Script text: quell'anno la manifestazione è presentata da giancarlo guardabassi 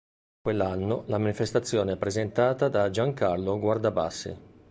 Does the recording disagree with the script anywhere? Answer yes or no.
no